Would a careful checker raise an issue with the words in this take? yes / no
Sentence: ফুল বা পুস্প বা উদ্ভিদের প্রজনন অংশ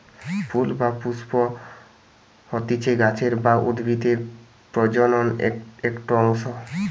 yes